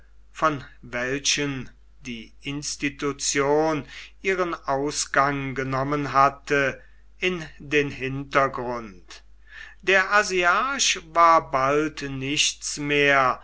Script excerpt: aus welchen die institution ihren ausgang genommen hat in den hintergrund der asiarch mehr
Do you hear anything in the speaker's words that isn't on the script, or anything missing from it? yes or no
yes